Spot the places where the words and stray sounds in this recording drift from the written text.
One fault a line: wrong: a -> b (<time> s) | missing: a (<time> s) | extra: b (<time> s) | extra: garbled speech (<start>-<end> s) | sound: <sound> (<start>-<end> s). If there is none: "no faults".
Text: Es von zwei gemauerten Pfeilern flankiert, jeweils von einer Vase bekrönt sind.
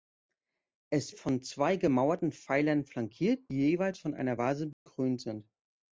sound: dropout (4.7-4.9 s)